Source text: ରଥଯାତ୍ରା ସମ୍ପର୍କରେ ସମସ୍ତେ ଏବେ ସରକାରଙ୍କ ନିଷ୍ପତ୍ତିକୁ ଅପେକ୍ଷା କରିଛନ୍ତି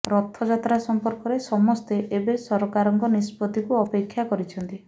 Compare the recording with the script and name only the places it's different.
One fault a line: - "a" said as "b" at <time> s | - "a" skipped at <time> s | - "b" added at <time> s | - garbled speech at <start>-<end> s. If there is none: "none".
none